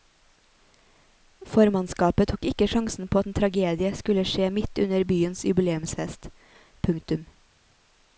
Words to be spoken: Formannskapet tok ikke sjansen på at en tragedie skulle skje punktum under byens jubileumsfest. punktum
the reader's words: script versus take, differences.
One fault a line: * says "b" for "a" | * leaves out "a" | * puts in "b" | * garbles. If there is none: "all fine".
* says "midt" for "punktum"